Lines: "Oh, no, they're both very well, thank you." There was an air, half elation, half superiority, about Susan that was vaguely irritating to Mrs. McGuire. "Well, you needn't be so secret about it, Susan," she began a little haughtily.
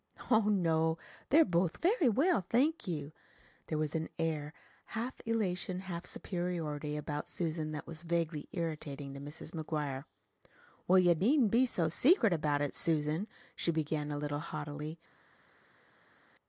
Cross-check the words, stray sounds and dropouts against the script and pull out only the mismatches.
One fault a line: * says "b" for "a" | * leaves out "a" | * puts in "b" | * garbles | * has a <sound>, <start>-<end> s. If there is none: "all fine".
all fine